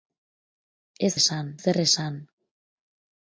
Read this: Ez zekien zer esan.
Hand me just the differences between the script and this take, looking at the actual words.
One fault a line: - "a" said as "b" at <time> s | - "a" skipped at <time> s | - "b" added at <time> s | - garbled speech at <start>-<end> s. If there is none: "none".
- "zekien" said as "esan" at 1.2 s